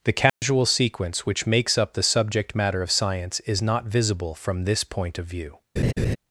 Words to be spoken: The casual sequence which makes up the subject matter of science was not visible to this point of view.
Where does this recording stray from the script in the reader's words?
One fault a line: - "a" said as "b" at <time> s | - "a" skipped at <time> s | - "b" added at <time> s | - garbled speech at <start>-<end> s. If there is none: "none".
- "was" said as "is" at 3.4 s
- "to" said as "from" at 4.3 s